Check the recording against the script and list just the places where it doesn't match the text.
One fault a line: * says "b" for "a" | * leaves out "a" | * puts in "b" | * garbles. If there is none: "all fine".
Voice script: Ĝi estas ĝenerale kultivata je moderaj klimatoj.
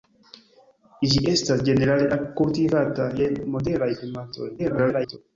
* garbles